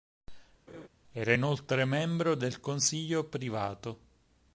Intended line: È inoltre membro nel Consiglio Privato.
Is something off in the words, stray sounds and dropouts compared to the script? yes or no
yes